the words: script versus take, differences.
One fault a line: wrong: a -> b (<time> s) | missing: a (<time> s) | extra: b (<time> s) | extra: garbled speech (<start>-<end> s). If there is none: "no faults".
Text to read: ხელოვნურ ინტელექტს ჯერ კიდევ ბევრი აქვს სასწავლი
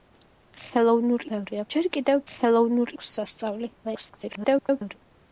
wrong: ინტელექტს -> ბევრი (1.3 s)
wrong: ბევრი -> ხელოვნურ (2.3 s)
extra: garbled speech (3.8-5.0 s)